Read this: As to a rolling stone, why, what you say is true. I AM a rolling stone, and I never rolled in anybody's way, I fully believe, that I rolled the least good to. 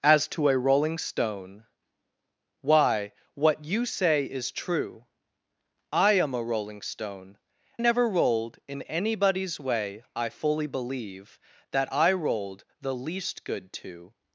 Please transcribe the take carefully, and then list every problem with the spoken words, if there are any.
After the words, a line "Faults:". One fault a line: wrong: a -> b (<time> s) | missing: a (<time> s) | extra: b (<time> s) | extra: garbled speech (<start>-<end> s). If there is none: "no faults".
As to a rolling stone, why, what you say is true. I AM a rolling stone, never rolled in anybody's way, I fully believe, that I rolled the least good to.
Faults:
missing: and I (7.4 s)